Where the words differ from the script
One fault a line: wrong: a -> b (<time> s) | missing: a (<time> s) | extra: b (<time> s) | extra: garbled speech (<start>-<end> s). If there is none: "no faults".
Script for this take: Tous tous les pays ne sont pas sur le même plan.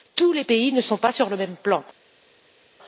missing: tous (0.3 s)